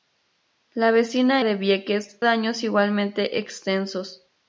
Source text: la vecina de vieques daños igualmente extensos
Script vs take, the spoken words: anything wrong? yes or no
no